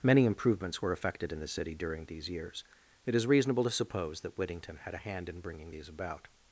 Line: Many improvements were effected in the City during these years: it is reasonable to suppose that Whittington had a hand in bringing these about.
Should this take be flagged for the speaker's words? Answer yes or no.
no